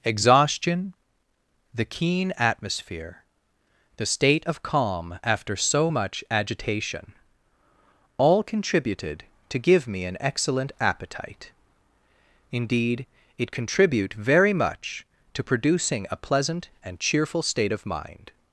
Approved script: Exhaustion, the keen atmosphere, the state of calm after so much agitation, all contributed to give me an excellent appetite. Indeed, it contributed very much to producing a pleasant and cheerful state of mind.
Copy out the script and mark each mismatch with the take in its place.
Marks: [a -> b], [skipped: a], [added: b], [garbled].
Exhaustion, the keen atmosphere, the state of calm after so much agitation, all contributed to give me an excellent appetite. Indeed, it [contributed -> contribute] very much to producing a pleasant and cheerful state of mind.